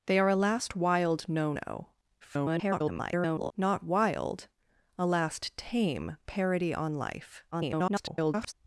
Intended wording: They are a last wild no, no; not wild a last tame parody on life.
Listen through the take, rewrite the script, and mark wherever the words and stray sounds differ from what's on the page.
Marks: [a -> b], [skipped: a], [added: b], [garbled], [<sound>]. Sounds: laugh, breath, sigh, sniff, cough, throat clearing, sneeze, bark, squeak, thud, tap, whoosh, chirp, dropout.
They are a last wild no, no; [garbled] not wild a last tame parody on life. [garbled]